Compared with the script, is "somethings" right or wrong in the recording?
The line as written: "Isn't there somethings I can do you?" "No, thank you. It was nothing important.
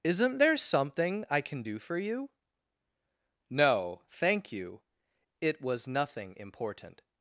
wrong